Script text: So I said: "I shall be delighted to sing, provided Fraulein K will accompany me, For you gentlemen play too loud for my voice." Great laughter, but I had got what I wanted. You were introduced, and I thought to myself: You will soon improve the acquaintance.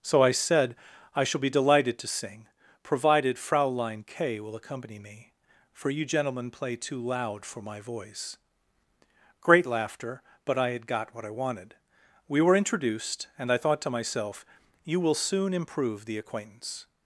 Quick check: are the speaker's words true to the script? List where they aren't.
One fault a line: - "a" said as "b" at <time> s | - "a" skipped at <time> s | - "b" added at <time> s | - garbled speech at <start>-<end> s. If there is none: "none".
- "You" said as "We" at 12.3 s